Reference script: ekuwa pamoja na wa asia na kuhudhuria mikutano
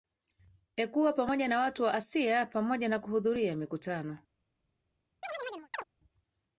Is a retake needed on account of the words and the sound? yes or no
yes